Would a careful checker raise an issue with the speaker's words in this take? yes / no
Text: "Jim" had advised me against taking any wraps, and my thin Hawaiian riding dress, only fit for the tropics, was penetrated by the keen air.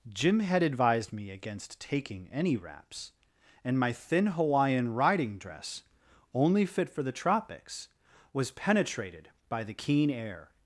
no